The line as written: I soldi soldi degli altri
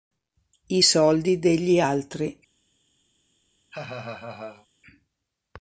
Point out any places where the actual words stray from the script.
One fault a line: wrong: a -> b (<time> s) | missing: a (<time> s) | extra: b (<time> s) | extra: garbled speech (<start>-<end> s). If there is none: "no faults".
missing: soldi (1.4 s)